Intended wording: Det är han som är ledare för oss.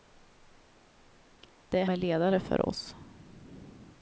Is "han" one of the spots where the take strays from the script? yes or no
yes